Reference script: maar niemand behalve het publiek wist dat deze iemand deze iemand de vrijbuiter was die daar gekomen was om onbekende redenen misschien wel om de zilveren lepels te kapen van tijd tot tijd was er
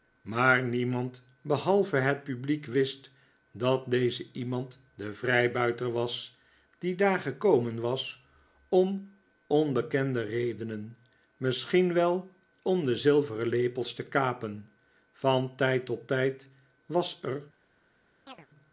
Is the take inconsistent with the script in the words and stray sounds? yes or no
yes